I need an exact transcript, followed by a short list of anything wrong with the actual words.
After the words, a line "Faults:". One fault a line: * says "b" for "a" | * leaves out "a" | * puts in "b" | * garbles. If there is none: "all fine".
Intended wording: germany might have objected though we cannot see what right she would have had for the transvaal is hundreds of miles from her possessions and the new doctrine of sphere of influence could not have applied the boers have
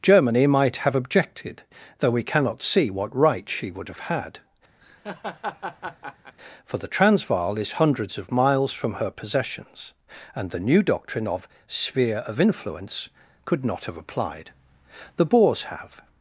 germany might have objected though we cannot see what right she would have had for the transvaal is hundreds of miles from her possessions and the new doctrine of sphere of influence could not have applied the boers have
Faults:
all fine